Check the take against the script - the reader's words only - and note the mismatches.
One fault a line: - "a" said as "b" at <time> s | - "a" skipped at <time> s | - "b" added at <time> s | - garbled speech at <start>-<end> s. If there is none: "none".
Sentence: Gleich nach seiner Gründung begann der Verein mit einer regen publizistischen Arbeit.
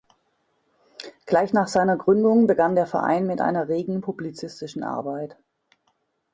none